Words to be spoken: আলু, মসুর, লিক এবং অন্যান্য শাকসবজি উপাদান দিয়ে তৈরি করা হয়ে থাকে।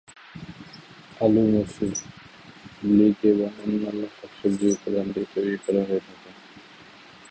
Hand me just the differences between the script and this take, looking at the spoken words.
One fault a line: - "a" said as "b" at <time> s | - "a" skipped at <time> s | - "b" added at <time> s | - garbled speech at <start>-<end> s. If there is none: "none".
none